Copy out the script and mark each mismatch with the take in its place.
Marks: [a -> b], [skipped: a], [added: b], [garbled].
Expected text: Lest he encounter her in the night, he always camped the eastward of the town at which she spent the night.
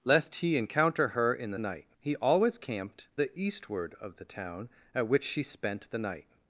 Lest he encounter her in the night, he always camped the eastward of the town at which she spent the night.